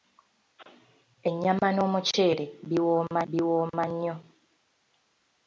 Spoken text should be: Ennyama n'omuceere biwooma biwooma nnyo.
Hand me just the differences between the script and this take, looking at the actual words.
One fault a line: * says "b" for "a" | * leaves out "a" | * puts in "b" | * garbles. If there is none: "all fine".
all fine